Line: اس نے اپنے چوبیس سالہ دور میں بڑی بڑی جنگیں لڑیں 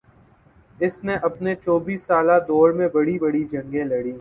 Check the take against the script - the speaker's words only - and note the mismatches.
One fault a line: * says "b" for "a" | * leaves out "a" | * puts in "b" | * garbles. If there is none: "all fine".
all fine